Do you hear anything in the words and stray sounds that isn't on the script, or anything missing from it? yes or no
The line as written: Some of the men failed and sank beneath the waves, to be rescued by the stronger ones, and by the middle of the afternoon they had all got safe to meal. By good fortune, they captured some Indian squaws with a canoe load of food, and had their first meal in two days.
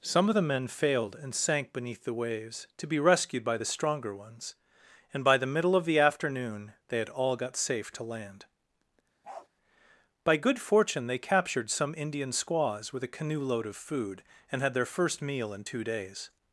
yes